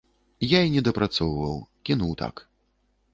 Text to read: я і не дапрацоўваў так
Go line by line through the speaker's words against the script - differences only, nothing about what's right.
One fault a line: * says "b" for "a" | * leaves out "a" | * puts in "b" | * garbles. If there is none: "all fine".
* puts in "кінуў"